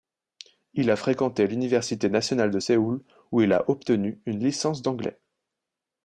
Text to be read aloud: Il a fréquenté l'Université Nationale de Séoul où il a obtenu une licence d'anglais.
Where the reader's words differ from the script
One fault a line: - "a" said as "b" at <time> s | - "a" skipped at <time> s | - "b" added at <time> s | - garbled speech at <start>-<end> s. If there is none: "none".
none